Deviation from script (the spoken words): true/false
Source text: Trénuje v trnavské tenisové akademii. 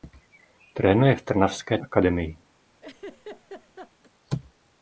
true